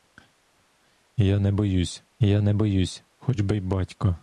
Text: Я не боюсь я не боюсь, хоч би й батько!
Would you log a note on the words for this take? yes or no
no